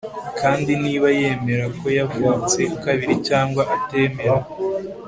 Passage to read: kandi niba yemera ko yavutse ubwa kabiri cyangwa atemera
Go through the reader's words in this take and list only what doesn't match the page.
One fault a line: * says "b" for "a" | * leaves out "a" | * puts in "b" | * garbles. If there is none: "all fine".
* leaves out "ubwa"